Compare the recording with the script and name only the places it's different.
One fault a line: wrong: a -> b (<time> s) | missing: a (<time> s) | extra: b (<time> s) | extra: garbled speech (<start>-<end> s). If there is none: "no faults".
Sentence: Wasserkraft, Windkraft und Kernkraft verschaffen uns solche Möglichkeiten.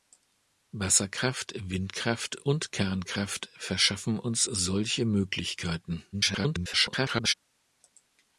extra: garbled speech (6.1-7.3 s)